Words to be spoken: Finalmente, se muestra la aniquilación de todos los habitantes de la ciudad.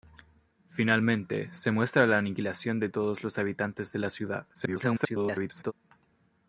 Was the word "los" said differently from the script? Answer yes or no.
no